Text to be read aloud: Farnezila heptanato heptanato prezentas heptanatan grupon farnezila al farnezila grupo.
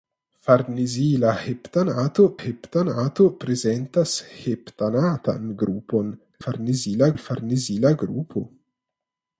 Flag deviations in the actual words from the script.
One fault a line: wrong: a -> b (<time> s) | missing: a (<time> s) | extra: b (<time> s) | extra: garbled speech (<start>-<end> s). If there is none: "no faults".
no faults